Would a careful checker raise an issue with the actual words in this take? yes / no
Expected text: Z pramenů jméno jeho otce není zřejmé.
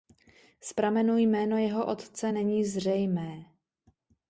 no